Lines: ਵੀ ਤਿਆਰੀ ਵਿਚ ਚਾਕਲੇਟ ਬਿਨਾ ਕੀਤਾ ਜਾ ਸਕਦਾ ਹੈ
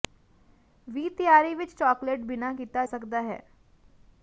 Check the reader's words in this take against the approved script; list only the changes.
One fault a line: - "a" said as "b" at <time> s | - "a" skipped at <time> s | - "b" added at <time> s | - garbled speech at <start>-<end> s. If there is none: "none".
- "ਜਾ" skipped at 2.8 s